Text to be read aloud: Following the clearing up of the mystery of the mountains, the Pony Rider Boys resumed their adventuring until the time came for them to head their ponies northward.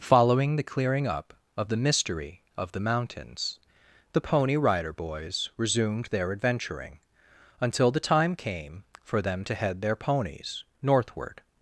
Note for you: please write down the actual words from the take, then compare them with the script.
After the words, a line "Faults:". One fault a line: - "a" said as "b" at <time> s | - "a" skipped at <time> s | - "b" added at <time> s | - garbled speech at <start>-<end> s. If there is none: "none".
Following the clearing up of the mystery of the mountains, the Pony Rider Boys resumed their adventuring until the time came for them to head their ponies northward.
Faults:
none